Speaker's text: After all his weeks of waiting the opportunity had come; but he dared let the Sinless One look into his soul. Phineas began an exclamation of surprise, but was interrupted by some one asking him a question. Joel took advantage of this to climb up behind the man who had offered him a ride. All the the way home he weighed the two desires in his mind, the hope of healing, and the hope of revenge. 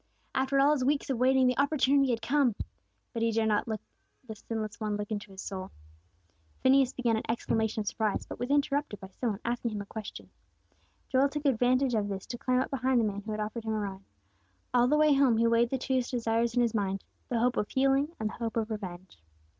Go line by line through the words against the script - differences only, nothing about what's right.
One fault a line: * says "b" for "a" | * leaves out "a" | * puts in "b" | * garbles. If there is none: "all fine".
* puts in "not"
* leaves out "the"